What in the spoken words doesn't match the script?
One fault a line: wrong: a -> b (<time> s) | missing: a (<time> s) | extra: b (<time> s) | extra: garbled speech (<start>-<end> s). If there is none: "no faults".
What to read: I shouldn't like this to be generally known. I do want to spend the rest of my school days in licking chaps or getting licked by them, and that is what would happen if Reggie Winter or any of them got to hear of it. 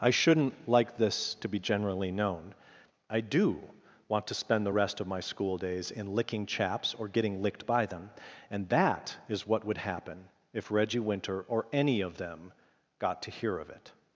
no faults